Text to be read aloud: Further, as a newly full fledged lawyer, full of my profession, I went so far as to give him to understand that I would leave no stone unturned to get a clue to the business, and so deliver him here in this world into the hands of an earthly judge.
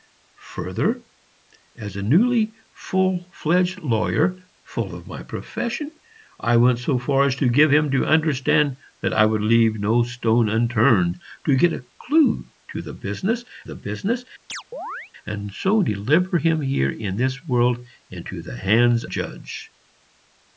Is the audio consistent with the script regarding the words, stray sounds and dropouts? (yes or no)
no